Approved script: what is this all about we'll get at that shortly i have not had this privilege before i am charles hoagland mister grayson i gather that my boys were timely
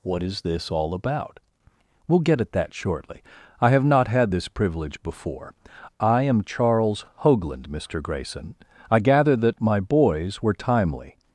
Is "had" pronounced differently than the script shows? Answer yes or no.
no